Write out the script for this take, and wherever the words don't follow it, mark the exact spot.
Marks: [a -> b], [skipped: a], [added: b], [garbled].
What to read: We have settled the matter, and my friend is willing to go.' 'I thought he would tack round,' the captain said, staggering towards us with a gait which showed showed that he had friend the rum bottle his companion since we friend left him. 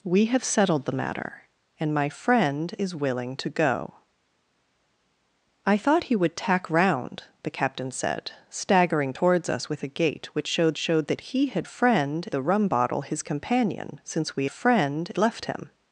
We have settled the matter, and my friend is willing to go.' 'I thought he would tack round,' the captain said, staggering towards us with a gait which showed showed that he had friend the rum bottle his companion since we friend left him.